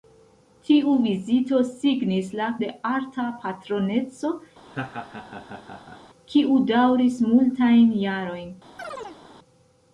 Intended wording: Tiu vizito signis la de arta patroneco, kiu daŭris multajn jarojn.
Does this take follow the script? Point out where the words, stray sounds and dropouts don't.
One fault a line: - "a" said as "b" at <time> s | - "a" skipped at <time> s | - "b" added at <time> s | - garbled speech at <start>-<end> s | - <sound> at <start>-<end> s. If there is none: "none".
- laugh at 4.7-6.0 s
- chirp at 8.8-9.2 s